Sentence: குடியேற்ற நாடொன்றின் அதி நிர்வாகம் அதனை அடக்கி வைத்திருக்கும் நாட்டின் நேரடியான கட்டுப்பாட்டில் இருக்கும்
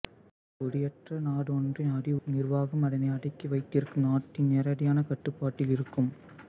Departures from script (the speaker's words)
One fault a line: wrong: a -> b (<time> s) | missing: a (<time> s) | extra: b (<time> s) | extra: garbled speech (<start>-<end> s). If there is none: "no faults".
no faults